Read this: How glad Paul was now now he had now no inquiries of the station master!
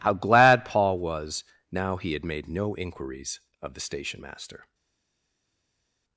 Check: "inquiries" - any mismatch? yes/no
no